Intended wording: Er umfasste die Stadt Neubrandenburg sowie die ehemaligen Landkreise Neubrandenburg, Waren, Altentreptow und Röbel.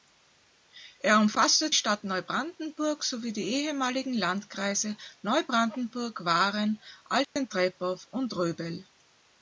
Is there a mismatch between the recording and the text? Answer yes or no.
yes